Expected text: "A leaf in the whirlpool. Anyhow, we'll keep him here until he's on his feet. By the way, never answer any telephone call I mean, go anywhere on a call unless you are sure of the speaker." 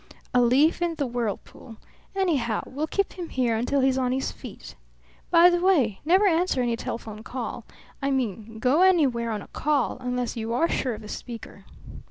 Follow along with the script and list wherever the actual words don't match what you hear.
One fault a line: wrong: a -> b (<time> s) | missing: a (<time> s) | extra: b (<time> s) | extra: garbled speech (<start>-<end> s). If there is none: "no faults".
no faults